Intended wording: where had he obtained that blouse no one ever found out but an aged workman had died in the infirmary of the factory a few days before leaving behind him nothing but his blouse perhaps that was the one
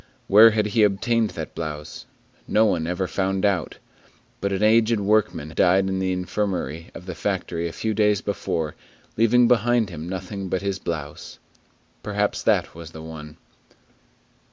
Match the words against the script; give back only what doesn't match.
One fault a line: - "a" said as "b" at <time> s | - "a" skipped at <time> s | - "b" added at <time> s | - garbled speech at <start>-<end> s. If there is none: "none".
- "had" skipped at 5.5 s